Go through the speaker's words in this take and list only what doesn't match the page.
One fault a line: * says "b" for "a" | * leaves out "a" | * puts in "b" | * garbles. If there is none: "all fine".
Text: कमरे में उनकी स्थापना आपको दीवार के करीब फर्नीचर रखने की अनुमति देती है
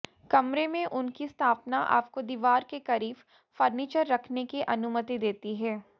all fine